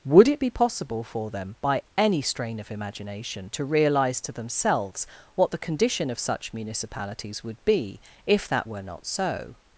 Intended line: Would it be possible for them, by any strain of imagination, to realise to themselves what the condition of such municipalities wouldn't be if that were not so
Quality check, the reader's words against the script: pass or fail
fail